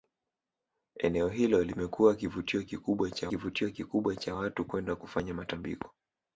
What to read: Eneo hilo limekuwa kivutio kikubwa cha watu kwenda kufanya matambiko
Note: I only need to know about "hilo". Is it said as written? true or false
true